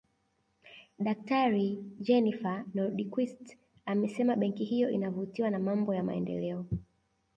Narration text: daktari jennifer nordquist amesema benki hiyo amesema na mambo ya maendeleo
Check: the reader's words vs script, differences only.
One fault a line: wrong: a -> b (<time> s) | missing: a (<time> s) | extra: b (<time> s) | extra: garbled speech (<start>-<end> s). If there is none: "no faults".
wrong: amesema -> inavutiwa (4.9 s)